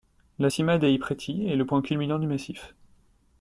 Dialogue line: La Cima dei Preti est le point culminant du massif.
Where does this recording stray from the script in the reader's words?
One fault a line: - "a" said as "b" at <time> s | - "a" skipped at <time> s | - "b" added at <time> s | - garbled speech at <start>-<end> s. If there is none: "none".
none